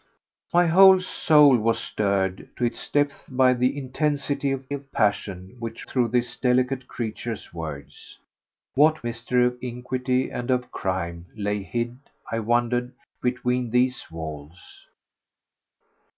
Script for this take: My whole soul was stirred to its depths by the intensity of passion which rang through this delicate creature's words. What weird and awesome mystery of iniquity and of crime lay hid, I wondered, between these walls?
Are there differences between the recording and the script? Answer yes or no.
yes